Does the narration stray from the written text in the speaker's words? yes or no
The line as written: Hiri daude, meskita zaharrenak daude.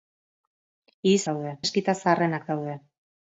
no